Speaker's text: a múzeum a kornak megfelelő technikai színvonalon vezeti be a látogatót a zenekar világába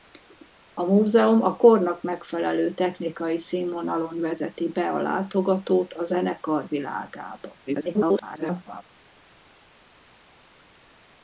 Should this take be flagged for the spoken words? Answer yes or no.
yes